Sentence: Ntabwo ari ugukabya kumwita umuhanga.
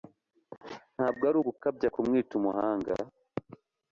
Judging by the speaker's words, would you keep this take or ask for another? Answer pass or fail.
pass